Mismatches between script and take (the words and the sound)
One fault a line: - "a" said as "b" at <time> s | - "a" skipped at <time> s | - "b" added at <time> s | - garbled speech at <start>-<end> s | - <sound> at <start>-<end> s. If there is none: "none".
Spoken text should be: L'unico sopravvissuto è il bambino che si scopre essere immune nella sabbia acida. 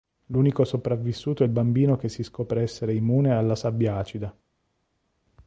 - "nella" said as "alla" at 3.3 s